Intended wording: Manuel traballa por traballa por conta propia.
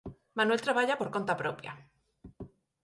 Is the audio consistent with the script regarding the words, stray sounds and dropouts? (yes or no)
no